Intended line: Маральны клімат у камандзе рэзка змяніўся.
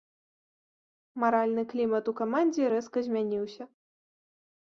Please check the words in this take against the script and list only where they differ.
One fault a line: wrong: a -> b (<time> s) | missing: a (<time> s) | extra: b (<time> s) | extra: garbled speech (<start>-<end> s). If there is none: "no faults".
no faults